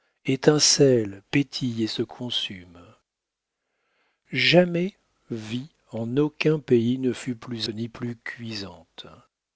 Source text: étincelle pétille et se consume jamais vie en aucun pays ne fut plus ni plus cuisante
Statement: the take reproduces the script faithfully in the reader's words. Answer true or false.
true